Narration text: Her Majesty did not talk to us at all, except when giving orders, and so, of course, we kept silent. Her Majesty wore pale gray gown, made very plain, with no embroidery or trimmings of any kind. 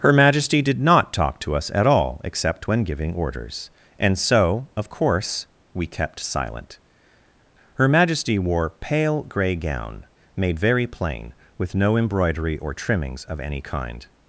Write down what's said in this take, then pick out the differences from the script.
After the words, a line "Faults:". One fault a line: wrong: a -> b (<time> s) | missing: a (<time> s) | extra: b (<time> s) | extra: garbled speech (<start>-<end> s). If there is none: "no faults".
Her Majesty did not talk to us at all, except when giving orders, and so, of course, we kept silent. Her Majesty wore pale gray gown, made very plain, with no embroidery or trimmings of any kind.
Faults:
no faults